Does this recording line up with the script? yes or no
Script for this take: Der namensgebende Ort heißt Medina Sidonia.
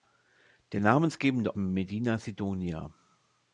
no